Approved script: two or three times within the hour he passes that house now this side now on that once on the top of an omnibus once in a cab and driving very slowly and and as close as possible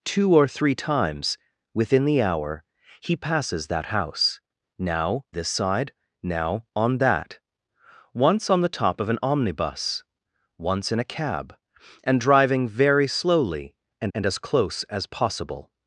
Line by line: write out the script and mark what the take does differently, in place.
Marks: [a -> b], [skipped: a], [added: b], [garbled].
two or three times within the hour he passes that house now this side now on that once on the top of an omnibus once in a cab and driving very slowly and and as close as possible